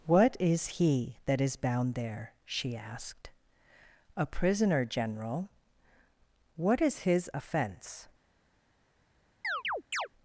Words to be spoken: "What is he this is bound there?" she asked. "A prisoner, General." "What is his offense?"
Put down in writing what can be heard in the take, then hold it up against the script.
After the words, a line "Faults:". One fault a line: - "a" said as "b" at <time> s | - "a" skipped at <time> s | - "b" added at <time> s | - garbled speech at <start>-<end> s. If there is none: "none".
"What is he that is bound there?" she asked. "A prisoner, General." "What is his offense?"
Faults:
- "this" said as "that" at 1.2 s